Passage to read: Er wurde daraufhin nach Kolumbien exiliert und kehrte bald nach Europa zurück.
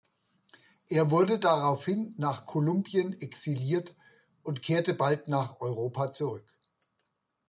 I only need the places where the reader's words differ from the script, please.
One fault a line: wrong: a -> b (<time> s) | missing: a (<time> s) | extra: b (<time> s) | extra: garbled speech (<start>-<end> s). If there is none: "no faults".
no faults